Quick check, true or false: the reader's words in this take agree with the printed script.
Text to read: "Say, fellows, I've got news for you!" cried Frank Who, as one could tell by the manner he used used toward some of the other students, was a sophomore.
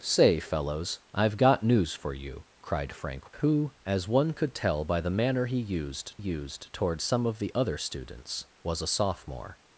true